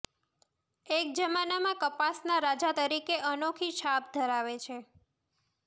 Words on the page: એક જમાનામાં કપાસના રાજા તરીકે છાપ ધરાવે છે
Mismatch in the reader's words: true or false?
true